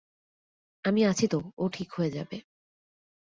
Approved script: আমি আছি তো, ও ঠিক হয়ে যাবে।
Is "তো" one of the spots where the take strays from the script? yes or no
no